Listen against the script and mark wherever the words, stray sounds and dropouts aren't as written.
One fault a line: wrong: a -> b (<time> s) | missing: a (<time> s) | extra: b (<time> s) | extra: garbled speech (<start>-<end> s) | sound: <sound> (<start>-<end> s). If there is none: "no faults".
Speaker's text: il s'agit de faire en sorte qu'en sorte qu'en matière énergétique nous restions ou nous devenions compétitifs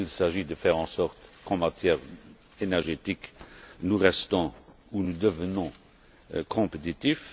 missing: sorte qu'en (1.6 s)